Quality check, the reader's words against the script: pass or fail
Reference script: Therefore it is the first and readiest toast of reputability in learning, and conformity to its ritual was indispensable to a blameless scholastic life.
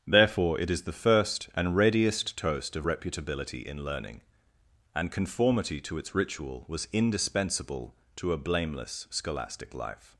pass